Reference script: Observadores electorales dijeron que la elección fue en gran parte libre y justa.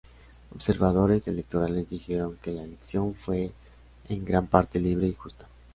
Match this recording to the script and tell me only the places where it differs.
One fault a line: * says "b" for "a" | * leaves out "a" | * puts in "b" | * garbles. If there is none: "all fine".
all fine